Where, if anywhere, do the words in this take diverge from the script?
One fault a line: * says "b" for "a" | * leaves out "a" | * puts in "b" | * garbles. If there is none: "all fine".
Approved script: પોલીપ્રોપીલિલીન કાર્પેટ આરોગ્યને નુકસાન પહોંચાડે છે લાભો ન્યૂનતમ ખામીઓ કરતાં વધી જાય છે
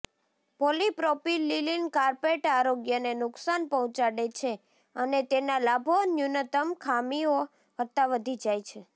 * puts in "અને તેના"